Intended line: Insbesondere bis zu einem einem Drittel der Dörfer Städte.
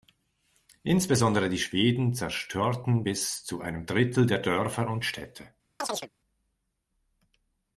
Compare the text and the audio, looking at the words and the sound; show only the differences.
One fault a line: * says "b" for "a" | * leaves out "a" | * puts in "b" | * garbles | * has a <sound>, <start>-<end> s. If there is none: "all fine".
* puts in "die Schweden zerstörten"
* leaves out "einem"
* puts in "und"
* has a chirp, 5.8-6.1 s